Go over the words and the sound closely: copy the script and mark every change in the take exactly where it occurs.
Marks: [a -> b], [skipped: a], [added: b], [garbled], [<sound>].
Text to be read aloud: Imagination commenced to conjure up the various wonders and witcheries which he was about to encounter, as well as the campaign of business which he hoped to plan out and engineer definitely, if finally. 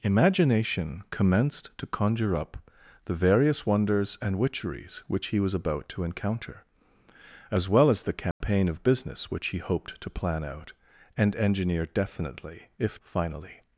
Imagination commenced to conjure up the various wonders and witcheries which he was about to encounter, as well as the campaign [dropout] of business which he hoped to plan out and engineer definitely, if finally.